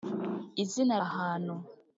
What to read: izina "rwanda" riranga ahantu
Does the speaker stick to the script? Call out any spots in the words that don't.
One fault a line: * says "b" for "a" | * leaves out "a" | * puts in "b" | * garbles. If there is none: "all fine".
* leaves out "rwanda riranga"